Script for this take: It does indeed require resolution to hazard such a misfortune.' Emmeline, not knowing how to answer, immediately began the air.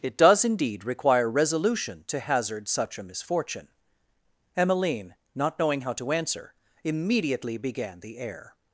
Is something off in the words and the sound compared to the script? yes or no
no